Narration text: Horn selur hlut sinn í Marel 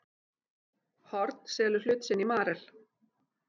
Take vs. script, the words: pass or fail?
pass